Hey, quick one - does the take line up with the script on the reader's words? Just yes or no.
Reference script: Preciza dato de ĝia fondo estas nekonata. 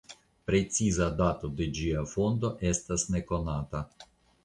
yes